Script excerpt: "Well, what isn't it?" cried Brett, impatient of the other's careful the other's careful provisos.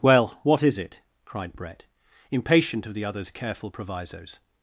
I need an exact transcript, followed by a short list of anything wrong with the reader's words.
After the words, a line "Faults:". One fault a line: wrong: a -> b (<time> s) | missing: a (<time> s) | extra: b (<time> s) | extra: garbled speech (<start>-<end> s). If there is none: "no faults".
"Well, what is it?" cried Brett, impatient of the other's careful provisos.
Faults:
wrong: isn't -> is (0.6 s)
missing: the other's careful (3.7 s)